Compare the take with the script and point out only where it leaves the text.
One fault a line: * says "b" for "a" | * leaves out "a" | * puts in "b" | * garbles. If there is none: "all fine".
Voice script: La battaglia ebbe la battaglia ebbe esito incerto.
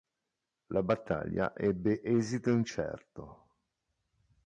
* leaves out "la battaglia ebbe"